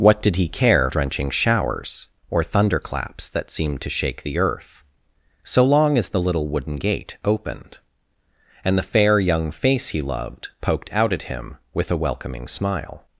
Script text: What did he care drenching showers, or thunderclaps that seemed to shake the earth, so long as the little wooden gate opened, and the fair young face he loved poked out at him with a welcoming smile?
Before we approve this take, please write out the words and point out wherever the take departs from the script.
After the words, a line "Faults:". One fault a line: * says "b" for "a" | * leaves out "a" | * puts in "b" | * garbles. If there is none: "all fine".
What did he care drenching showers, or thunderclaps that seemed to shake the earth, so long as the little wooden gate opened, and the fair young face he loved poked out at him with a welcoming smile?
Faults:
all fine